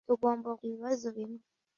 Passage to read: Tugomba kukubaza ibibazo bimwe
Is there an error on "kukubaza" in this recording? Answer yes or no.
yes